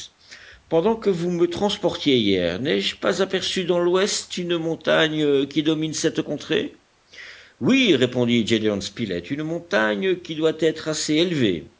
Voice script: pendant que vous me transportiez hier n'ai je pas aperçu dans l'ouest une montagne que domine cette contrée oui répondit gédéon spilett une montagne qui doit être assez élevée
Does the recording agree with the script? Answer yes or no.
no